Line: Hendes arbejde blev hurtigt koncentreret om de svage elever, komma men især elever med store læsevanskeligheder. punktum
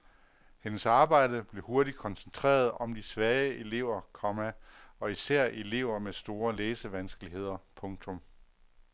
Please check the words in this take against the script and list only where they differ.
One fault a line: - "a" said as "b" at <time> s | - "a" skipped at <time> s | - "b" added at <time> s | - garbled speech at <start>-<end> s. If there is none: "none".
- "men" said as "og" at 5.0 s